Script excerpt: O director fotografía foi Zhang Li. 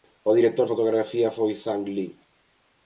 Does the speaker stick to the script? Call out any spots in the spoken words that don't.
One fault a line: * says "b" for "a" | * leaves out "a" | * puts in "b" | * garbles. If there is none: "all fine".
all fine